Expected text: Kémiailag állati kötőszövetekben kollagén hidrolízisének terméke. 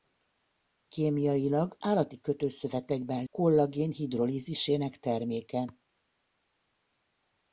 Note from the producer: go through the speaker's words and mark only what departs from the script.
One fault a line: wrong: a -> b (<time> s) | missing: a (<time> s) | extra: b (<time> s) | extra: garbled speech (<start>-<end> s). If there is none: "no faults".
no faults